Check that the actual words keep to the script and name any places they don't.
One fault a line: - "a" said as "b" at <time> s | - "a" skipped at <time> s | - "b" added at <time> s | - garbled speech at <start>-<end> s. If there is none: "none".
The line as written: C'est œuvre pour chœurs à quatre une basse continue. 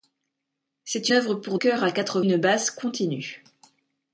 none